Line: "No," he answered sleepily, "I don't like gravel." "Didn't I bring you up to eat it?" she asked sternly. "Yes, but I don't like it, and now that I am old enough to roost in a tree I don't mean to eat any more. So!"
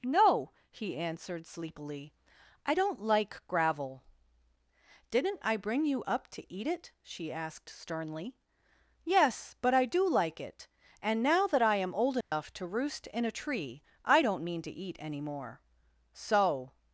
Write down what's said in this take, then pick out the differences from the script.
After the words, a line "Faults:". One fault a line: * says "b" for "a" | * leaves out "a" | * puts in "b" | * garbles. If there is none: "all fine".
"No," he answered sleepily, "I don't like gravel." "Didn't I bring you up to eat it?" she asked sternly. "Yes, but I do like it, and now that I am old enough to roost in a tree I don't mean to eat any more. So!"
Faults:
* says "do" for "don't"